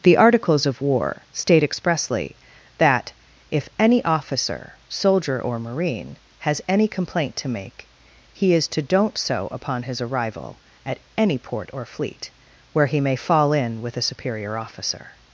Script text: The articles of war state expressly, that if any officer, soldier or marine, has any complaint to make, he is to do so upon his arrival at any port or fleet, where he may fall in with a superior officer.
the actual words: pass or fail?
fail